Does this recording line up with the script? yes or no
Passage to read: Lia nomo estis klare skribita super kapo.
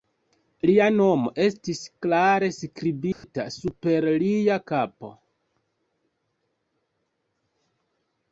no